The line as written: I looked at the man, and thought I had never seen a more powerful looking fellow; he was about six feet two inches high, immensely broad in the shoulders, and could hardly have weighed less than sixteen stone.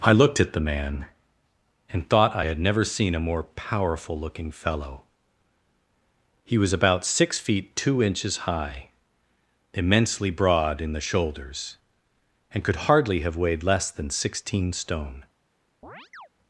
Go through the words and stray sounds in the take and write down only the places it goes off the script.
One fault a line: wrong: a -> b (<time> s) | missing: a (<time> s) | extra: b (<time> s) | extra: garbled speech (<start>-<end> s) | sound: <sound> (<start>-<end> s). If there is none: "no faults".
sound: chirp (15.8-16.3 s)